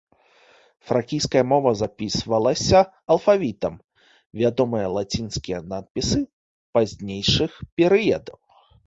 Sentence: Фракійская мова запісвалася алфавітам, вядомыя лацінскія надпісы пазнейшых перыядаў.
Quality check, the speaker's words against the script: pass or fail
pass